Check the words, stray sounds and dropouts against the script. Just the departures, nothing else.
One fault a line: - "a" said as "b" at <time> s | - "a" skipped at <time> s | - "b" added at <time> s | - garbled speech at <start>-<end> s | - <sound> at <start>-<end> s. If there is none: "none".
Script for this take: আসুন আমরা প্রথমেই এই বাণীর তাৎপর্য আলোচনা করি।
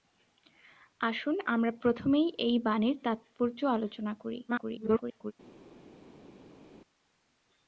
- garbled speech at 4.5-5.3 s